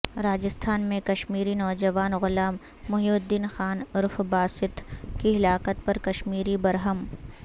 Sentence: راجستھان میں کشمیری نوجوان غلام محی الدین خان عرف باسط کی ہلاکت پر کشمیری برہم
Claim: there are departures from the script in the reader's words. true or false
false